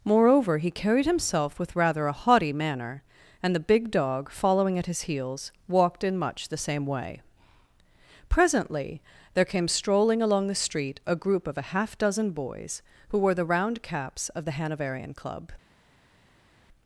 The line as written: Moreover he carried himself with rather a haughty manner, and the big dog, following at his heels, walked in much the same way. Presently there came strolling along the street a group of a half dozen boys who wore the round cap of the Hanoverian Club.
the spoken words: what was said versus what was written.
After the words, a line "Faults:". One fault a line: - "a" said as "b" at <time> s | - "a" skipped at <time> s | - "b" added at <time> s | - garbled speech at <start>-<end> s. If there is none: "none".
Moreover he carried himself with rather a haughty manner, and the big dog, following at his heels, walked in much the same way. Presently there came strolling along the street a group of a half dozen boys who wore the round caps of the Hanoverian Club.
Faults:
- "cap" said as "caps" at 13.8 s